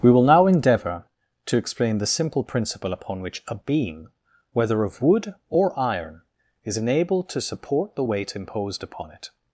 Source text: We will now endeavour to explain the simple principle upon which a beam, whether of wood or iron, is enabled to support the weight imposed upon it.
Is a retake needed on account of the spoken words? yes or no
no